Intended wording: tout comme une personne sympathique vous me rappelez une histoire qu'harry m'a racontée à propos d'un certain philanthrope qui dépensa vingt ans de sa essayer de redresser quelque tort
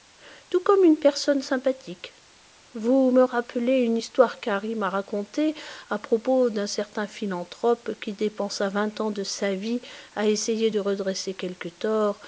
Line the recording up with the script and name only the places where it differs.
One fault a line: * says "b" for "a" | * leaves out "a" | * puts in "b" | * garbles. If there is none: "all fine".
* puts in "vie à"